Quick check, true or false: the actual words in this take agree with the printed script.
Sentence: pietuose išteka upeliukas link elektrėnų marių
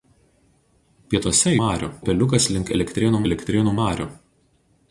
false